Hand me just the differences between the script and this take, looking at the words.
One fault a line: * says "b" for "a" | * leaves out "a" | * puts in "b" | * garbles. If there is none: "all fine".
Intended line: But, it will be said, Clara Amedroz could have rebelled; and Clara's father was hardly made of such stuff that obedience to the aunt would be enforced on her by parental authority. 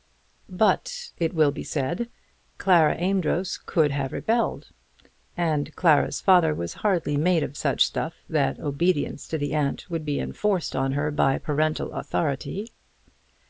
all fine